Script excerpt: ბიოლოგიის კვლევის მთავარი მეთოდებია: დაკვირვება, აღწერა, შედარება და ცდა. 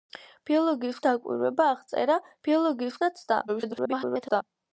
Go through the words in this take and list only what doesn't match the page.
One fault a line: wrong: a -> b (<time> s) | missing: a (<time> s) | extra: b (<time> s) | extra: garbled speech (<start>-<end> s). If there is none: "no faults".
missing: კვლევის მთავარი მეთოდებია (1.0 s)
wrong: შედარება -> ბიოლოგიის (2.5 s)
extra: garbled speech (3.5-4.4 s)